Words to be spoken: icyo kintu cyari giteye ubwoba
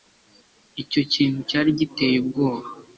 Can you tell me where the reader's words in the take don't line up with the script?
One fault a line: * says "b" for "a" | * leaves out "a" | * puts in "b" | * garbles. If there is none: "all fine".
all fine